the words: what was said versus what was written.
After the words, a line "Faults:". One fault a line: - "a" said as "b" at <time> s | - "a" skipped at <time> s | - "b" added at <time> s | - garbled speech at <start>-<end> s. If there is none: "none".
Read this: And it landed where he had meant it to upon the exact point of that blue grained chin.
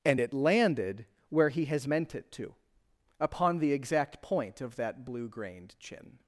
And it landed where he has meant it to upon the exact point of that blue grained chin.
Faults:
- "had" said as "has" at 1.6 s